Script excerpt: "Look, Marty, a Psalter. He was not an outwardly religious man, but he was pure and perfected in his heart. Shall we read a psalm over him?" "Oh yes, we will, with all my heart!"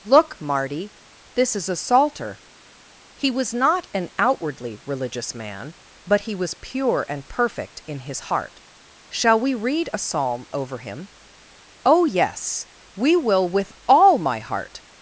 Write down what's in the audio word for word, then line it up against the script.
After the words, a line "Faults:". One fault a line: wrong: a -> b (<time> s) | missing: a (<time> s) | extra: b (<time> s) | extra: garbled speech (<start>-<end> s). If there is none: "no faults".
"Look, Marty, this is a Psalter. He was not an outwardly religious man, but he was pure and perfect in his heart. Shall we read a psalm over him?" "Oh yes, we will, with all my heart!"
Faults:
extra: this is (1.4 s)
wrong: perfected -> perfect (7.3 s)